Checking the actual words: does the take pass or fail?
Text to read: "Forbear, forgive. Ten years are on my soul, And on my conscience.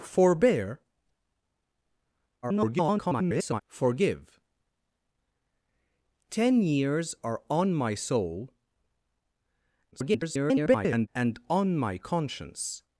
fail